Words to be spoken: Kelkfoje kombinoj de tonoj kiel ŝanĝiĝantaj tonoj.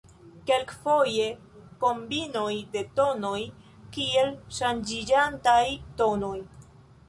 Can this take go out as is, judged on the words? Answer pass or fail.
pass